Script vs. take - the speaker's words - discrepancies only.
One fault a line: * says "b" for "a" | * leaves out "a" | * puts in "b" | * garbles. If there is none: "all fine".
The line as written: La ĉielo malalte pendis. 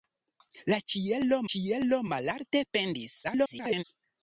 * puts in "ĉielo"
* garbles